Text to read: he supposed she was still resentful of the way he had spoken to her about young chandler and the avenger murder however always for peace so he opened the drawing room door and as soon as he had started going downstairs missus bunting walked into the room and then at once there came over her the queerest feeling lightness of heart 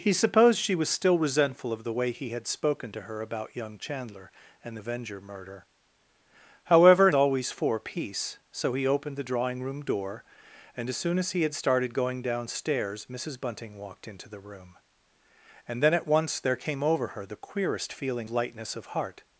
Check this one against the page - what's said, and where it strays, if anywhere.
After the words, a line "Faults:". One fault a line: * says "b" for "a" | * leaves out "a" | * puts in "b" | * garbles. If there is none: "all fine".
he supposed she was still resentful of the way he had spoken to her about young chandler and the avenger murder however always for peace so he opened the drawing room door and as soon as he had started going downstairs missus bunting walked into the room and then at once there came over her the queerest feeling lightness of heart
Faults:
all fine